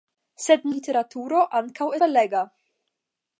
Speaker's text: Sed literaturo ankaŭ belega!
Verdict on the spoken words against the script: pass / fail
pass